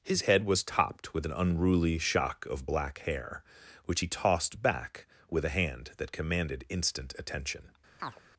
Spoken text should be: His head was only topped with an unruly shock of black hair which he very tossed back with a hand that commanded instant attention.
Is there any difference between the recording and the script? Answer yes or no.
yes